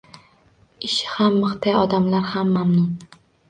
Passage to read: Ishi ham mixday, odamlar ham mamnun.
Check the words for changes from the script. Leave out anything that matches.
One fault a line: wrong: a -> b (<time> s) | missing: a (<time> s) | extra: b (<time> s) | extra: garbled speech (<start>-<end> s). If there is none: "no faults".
no faults